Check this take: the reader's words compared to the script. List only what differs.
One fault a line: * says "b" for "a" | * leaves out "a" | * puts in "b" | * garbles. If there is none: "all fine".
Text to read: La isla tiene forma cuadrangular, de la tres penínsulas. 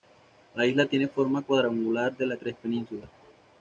all fine